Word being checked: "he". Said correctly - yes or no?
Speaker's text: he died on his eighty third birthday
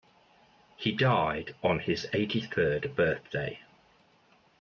yes